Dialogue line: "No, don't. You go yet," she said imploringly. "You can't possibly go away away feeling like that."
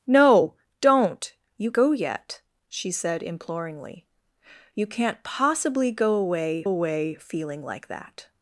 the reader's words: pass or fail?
pass